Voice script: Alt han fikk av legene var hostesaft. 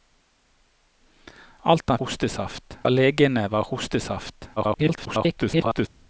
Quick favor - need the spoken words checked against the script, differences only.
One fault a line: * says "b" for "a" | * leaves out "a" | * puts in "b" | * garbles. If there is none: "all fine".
* says "hostesaft" for "fikk"
* garbles